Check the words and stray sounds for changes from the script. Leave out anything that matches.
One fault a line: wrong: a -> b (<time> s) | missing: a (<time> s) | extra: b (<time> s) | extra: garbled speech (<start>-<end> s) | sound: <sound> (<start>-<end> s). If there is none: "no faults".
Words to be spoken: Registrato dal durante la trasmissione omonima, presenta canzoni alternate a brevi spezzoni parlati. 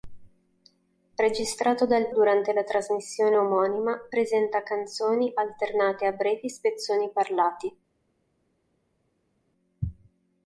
no faults